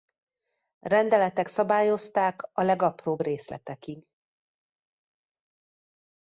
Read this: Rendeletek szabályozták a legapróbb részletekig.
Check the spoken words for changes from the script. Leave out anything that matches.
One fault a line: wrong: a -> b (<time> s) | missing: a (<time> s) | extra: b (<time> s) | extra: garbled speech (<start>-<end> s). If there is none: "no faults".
no faults